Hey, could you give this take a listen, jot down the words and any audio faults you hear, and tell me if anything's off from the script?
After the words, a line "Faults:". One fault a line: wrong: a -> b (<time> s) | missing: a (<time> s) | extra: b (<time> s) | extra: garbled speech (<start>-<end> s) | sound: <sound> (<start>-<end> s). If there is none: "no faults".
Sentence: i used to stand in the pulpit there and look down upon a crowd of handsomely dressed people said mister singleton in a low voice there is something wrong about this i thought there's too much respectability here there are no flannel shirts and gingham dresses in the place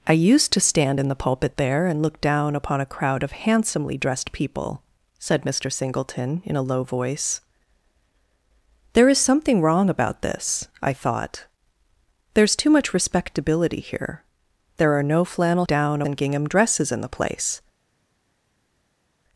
i used to stand in the pulpit there and look down upon a crowd of handsomely dressed people said mister singleton in a low voice there is something wrong about this i thought there's too much respectability here there are no flannel down and gingham dresses in the place
Faults:
wrong: shirts -> down (15.7 s)